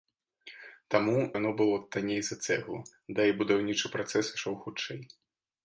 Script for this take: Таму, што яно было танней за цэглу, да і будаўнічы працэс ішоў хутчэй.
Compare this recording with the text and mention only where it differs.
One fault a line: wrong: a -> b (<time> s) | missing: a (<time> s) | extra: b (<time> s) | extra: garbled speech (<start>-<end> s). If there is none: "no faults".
missing: што (1.2 s)